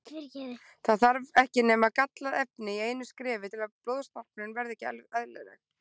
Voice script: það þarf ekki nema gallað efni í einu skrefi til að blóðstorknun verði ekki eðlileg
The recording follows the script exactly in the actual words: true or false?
true